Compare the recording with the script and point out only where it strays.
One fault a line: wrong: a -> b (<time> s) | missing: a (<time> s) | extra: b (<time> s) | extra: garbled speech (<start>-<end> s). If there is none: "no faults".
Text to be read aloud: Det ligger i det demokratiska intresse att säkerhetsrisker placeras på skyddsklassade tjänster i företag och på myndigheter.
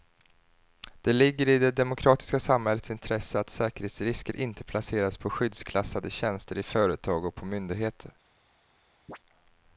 extra: samhällets (2.4 s)
extra: inte (4.3 s)